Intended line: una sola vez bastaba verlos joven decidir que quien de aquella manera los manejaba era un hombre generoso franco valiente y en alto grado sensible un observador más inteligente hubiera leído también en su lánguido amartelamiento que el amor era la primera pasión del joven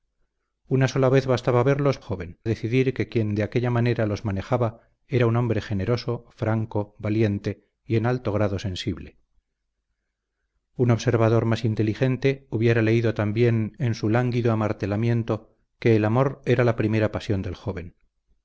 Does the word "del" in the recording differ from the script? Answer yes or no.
no